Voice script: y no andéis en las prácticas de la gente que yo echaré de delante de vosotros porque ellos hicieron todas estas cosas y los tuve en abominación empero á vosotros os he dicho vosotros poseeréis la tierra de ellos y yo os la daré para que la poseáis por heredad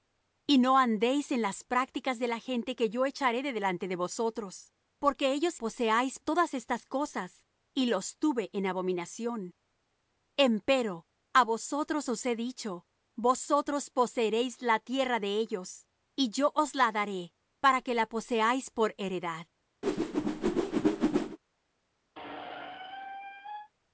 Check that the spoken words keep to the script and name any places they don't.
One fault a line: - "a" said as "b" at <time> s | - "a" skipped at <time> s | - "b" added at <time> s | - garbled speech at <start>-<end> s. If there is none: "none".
- "hicieron" said as "poseáis" at 5.6 s